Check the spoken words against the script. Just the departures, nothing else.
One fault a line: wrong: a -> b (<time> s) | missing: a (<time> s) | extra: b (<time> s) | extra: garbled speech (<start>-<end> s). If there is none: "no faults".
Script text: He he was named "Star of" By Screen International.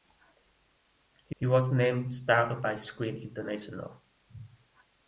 no faults